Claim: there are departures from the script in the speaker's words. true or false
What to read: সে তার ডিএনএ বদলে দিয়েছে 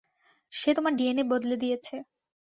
true